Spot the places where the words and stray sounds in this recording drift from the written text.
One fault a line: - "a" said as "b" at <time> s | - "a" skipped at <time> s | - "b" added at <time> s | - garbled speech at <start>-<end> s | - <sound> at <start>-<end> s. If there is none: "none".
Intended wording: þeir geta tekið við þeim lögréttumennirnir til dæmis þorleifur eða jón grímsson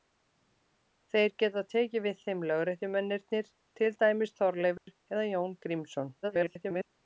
- dropout at 4.8-4.9 s
- garbled speech at 6.2-6.9 s